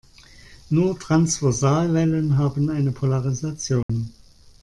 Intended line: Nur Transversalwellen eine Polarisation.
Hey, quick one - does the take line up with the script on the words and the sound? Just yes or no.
no